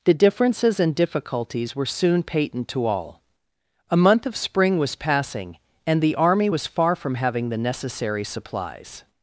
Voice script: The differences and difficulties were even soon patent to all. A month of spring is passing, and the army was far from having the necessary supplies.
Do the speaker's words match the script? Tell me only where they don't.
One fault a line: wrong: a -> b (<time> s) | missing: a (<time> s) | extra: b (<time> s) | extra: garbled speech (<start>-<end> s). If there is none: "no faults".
missing: even (1.9 s)
wrong: is -> was (4.8 s)